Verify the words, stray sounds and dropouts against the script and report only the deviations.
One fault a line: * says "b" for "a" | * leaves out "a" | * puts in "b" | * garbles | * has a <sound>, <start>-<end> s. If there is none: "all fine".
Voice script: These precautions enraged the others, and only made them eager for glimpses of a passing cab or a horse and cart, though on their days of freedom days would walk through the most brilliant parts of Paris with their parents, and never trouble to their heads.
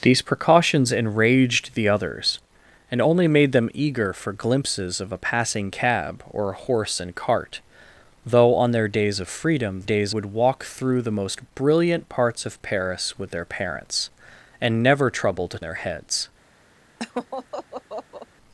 * has a laugh, 17.0-18.3 s